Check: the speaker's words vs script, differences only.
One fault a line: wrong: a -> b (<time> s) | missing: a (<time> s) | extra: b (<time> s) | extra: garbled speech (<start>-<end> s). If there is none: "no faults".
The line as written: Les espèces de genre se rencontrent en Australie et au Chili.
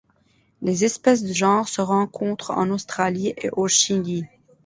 no faults